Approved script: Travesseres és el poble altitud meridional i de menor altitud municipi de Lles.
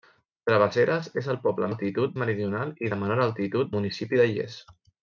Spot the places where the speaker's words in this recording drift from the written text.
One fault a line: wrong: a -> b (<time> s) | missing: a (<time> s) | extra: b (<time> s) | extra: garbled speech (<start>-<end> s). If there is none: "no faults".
no faults